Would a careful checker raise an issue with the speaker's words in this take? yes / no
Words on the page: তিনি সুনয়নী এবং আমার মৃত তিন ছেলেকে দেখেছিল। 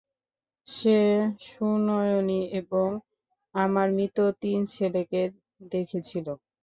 yes